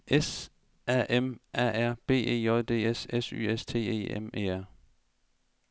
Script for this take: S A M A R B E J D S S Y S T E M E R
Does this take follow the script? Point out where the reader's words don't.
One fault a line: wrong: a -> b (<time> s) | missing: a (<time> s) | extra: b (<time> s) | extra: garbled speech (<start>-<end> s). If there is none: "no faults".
no faults